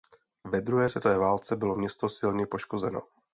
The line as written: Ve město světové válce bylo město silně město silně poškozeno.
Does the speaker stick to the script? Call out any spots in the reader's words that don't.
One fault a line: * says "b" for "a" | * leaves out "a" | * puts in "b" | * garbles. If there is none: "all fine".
* says "druhé" for "město"
* leaves out "město silně"